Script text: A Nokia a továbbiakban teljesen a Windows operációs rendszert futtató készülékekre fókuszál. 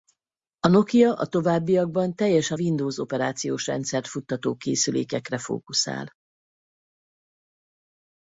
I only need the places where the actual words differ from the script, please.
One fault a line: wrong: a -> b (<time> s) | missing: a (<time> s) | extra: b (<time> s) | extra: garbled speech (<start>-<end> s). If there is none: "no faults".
missing: a (2.6 s)